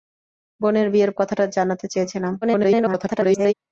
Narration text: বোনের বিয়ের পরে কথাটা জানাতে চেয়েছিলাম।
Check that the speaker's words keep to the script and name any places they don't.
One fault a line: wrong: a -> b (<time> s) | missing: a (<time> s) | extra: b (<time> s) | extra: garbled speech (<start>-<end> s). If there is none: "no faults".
missing: পরে (1.1 s)
extra: garbled speech (2.4-3.5 s)